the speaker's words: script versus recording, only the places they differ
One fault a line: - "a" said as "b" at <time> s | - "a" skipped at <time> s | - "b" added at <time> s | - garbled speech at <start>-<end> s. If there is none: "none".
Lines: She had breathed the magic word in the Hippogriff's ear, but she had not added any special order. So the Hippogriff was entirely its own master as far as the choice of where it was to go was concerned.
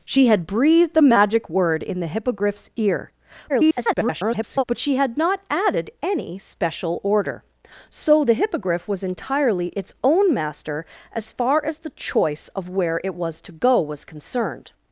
- garbled speech at 3.5-4.6 s